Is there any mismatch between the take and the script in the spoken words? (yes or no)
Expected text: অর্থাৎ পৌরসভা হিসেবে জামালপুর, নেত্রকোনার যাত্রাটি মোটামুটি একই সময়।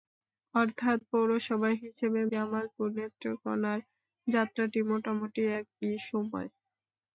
no